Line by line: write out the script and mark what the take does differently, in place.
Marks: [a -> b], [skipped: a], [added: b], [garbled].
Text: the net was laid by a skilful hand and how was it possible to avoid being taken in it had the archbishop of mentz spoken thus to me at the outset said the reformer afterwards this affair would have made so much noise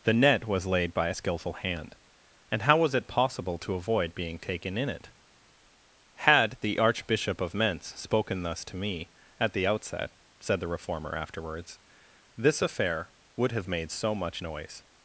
the net was laid by a skilful hand and how was it possible to avoid being taken in it had the archbishop of mentz spoken thus to me at the outset said the reformer afterwards this affair would have made so much noise